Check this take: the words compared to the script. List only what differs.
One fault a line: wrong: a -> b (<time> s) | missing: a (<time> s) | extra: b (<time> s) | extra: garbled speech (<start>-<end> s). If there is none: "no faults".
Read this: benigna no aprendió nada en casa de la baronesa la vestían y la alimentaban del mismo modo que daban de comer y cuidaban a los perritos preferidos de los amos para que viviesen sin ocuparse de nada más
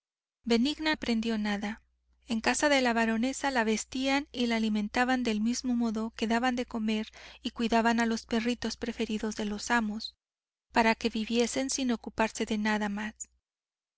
missing: no (0.9 s)